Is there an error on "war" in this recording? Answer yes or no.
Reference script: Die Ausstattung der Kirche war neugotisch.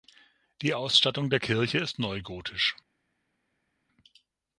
yes